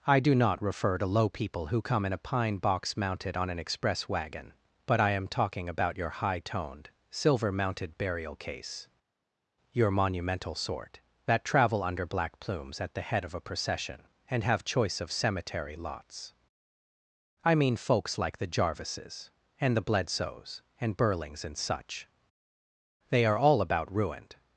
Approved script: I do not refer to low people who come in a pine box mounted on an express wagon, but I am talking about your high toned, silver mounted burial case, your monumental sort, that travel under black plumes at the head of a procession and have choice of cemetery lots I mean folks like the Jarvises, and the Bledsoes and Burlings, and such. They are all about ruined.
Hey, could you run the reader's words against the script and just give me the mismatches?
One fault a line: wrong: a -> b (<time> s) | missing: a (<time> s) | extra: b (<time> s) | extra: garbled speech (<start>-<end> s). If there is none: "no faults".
no faults